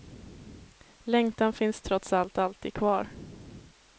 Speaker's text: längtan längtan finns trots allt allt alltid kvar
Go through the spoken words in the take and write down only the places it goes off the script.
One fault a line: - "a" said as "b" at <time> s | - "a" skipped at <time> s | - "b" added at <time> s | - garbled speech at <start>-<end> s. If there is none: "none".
- "längtan" skipped at 1.5 s
- "allt" skipped at 2.4 s